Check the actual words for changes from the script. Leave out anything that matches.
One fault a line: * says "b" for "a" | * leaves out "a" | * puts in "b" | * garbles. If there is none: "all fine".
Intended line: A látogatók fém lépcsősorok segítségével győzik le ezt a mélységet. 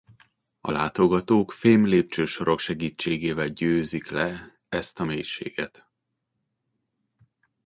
all fine